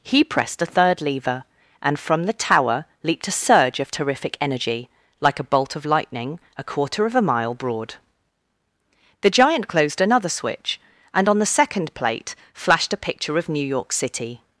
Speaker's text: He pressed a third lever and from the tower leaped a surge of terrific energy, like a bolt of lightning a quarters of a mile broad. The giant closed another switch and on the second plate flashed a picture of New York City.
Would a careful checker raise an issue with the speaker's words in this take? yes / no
yes